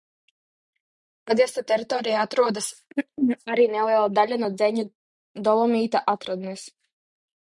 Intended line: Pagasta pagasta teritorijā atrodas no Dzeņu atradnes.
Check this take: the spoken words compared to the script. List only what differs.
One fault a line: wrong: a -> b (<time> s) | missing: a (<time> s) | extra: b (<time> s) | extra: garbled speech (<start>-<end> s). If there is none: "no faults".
missing: pagasta (1.6 s)
extra: arī neliela daļa (3.5 s)
extra: dolomīta (5.5 s)